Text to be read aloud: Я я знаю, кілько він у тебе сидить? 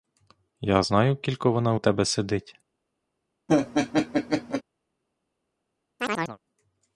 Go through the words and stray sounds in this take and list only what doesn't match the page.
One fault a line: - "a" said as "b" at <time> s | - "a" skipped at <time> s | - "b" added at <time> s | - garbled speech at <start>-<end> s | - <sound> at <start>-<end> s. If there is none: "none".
- "я" skipped at 0.8 s
- "він" said as "вона" at 1.5 s
- laugh at 3.5-4.6 s
- chirp at 6.0-6.4 s